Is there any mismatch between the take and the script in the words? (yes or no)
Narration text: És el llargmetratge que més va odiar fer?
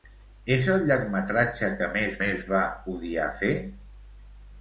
yes